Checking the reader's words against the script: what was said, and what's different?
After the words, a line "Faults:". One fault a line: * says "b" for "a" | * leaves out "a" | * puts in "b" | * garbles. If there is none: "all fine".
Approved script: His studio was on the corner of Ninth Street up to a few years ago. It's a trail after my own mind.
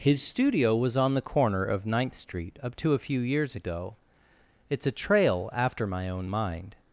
His studio was on the corner of Ninth Street up to a few years ago. It's a trail after my own mind.
Faults:
all fine